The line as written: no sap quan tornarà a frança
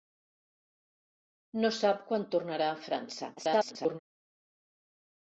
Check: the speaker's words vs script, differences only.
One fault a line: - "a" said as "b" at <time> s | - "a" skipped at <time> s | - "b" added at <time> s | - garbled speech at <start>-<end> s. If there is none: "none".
- garbled speech at 3.4-4.0 s